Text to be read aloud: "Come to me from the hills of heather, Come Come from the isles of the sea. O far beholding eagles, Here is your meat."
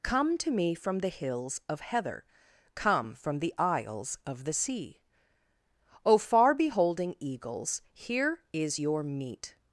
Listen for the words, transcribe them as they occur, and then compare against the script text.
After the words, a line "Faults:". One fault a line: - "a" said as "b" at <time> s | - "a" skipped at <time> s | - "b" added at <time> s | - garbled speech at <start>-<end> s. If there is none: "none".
"Come to me from the hills of heather, Come from the isles of the sea. O far beholding eagles, Here is your meat."
Faults:
- "Come" skipped at 3.1 s